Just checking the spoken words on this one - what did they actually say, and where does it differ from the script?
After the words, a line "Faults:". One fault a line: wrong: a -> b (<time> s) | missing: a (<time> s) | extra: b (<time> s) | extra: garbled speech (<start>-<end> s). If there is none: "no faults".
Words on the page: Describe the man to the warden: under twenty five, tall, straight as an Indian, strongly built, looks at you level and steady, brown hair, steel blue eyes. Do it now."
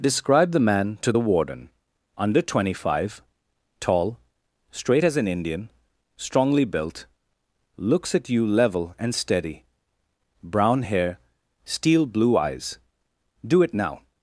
Describe the man to the warden: under twenty five, tall, straight as an Indian, strongly built, looks at you level and steady, brown hair, steel blue eyes. Do it now."
Faults:
no faults